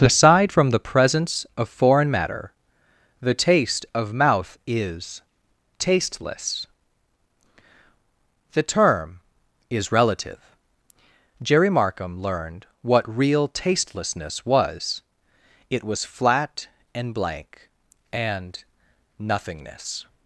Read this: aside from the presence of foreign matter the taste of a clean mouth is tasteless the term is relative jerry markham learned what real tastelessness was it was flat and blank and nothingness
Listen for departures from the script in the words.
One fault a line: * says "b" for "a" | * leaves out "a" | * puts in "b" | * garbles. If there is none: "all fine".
* leaves out "a clean"